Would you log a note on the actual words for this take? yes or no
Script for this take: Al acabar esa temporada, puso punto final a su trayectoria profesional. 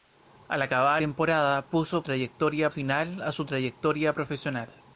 yes